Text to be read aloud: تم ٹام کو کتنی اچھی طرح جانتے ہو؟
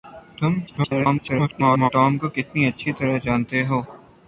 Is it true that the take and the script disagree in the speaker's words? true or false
true